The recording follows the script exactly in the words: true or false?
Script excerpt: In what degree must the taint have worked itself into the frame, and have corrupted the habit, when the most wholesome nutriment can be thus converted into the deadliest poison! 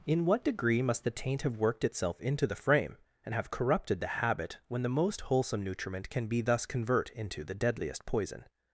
false